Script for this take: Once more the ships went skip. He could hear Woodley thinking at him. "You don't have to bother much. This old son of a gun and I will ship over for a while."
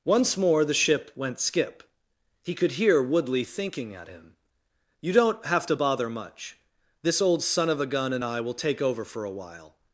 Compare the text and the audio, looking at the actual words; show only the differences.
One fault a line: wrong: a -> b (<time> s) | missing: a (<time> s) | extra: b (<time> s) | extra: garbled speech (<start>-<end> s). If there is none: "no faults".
wrong: ships -> ship (0.7 s)
wrong: ship -> take (8.5 s)